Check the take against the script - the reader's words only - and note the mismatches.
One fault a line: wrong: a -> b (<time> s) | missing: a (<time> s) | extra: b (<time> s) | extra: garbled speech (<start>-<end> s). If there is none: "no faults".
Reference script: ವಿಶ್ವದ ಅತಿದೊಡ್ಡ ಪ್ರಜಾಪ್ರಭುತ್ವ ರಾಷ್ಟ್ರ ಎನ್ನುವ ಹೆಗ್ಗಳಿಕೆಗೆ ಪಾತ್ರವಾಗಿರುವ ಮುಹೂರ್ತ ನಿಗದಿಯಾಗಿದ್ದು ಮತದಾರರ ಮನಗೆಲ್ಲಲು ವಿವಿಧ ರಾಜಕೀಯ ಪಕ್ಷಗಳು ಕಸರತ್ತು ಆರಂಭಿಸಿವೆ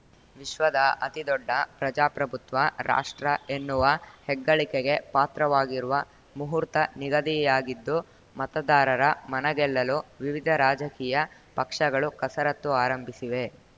no faults